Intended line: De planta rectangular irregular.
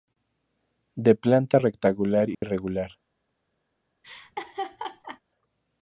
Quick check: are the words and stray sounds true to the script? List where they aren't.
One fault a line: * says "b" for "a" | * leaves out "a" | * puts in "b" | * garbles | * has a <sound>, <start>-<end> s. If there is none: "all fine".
* has a dropout, 2.3-2.4 s
* has a laugh, 4.0-5.2 s